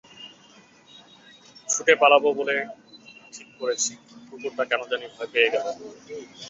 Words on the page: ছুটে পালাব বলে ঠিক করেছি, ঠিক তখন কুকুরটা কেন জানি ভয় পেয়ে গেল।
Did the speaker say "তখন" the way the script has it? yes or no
no